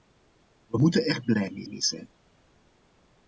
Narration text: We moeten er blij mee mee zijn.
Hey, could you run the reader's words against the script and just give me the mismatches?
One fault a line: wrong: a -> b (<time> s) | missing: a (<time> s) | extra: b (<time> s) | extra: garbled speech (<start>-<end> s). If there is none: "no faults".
no faults